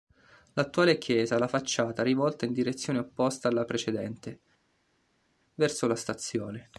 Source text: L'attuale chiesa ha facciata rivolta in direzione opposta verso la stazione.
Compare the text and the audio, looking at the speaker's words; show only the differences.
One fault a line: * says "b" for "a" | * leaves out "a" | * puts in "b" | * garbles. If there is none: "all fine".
* puts in "la"
* puts in "alla precedente"